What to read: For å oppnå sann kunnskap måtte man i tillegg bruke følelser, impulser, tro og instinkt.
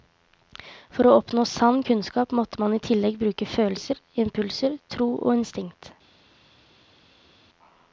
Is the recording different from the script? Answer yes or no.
no